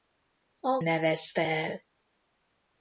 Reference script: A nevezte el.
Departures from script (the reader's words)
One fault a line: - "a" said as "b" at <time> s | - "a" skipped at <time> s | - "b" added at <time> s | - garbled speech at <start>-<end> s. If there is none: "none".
none